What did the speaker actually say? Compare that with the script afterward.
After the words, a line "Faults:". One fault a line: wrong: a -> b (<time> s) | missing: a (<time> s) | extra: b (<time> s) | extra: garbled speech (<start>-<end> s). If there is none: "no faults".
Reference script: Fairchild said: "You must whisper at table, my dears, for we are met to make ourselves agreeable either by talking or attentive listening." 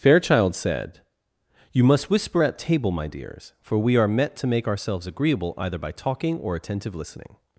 Fairchild said: "You must whisper at table, my dears, for we are met to make ourselves agreeable either by talking or attentive listening."
Faults:
no faults